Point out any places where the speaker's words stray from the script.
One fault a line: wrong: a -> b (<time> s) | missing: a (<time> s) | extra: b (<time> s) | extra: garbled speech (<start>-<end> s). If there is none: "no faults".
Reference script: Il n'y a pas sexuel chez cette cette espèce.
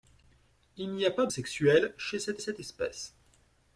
no faults